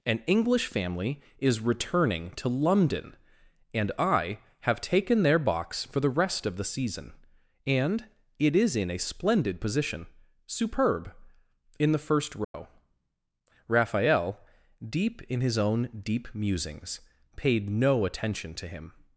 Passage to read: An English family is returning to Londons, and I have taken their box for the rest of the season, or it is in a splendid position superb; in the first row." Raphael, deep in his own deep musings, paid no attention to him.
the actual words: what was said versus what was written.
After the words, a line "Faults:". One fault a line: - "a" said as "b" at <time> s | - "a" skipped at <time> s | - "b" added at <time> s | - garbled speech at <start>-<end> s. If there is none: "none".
An English family is returning to London, and I have taken their box for the rest of the season, and it is in a splendid position superb; in the first row." Raphael, deep in his own deep musings, paid no attention to him.
Faults:
- "Londons" said as "London" at 2.5 s
- "or" said as "and" at 7.7 s